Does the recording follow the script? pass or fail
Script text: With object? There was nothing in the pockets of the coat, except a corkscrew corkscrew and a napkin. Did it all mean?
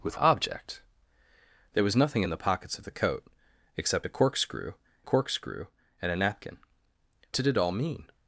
pass